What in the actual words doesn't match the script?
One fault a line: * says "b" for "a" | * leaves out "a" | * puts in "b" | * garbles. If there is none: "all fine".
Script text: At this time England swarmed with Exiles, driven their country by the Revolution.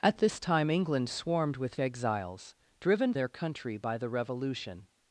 all fine